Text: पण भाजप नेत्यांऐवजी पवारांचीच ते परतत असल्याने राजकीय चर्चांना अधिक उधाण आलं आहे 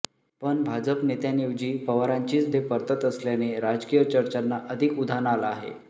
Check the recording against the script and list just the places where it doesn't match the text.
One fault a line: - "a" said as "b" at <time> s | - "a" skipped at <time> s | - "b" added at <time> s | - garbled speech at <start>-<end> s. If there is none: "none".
none